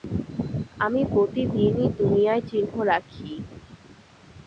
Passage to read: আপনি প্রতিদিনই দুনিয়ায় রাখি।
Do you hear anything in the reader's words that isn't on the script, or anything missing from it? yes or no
yes